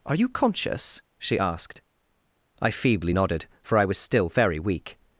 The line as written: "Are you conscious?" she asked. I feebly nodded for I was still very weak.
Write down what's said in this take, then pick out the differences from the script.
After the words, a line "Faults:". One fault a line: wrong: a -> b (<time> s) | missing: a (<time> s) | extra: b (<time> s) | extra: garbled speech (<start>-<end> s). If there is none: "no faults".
"Are you conscious?" she asked. I feebly nodded for I was still very weak.
Faults:
no faults